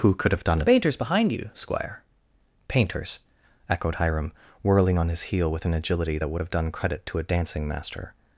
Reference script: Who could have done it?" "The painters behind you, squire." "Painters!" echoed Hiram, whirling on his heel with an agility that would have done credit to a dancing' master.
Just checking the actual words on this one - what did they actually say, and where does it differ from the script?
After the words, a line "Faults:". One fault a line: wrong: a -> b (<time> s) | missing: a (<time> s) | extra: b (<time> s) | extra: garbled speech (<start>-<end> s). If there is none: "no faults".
Who could have done it?" "The painters behind you, squire." "Painters!" echoed Hiram, whirling on his heel with an agility that would have done credit to a dancing' master.
Faults:
no faults